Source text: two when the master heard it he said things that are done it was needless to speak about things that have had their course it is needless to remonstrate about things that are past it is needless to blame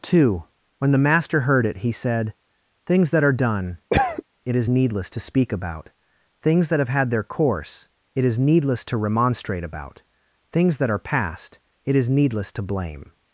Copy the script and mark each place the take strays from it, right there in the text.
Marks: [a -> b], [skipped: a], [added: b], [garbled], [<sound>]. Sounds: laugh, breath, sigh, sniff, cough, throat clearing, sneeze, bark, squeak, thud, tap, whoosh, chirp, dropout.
two when the master heard it he said things that are done [cough] it [was -> is] needless to speak about things that have had their course it is needless to remonstrate about things that are past it is needless to blame